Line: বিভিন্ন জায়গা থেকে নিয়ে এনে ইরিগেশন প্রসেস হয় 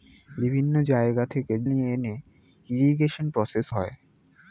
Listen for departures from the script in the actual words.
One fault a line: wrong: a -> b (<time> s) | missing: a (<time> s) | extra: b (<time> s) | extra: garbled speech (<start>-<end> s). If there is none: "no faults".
no faults